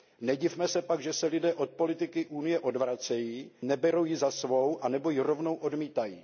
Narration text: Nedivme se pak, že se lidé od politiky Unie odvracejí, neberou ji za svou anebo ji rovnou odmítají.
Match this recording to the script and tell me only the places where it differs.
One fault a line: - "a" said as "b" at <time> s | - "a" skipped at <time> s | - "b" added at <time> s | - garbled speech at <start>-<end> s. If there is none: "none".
none